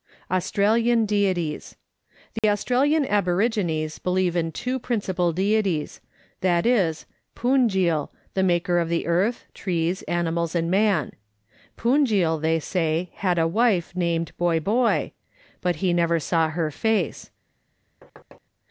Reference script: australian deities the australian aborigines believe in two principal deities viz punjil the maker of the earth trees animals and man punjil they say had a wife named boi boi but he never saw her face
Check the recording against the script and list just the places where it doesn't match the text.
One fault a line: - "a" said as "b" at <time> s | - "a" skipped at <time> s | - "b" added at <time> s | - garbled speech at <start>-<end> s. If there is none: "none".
none